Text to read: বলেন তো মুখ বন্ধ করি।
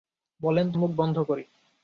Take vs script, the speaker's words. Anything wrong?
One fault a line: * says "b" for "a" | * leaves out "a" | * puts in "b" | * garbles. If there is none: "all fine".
all fine